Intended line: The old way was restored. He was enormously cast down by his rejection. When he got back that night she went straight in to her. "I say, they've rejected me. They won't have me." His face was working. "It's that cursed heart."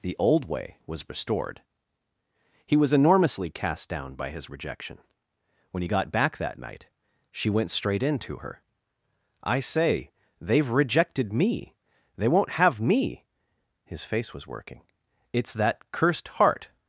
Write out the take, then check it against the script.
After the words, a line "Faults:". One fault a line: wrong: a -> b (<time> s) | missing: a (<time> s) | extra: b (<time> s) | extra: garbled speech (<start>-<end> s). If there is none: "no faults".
The old way was restored. He was enormously cast down by his rejection. When he got back that night she went straight in to her. "I say, they've rejected me. They won't have me." His face was working. "It's that cursed heart."
Faults:
no faults